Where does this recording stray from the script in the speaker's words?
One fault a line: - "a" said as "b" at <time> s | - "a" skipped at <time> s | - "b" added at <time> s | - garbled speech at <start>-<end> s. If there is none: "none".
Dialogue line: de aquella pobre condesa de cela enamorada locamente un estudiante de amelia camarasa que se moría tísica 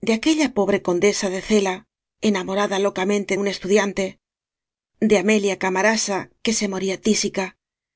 none